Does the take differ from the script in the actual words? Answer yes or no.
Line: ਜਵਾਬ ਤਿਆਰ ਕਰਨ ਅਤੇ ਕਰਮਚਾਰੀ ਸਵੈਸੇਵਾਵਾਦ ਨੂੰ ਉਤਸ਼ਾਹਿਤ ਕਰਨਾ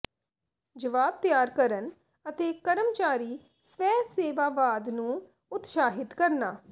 no